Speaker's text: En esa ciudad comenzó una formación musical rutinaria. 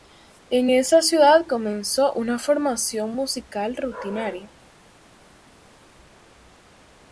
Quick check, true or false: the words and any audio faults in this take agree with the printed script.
true